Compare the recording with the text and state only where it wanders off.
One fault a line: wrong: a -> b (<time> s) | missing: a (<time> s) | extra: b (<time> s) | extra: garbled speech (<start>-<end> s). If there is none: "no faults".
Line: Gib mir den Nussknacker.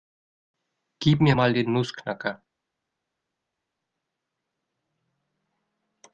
extra: mal (1.3 s)